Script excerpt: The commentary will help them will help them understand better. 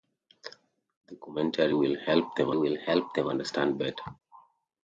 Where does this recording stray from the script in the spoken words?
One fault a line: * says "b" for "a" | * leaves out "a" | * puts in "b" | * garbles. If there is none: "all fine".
all fine